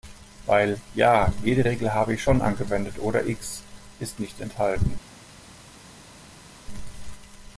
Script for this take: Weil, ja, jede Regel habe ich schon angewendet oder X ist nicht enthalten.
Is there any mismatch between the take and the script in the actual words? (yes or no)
no